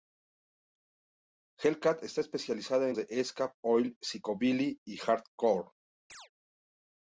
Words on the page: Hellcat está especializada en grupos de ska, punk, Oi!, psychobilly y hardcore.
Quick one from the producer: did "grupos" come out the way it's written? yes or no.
no